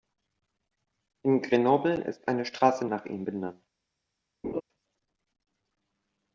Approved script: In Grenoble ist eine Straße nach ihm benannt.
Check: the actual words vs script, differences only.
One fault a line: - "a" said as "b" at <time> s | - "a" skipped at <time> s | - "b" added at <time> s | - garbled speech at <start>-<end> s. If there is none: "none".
none